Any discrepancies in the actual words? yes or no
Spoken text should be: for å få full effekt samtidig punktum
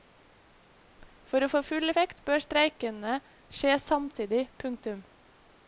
yes